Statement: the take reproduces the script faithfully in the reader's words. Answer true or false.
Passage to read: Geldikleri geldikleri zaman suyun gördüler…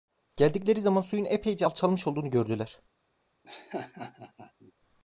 false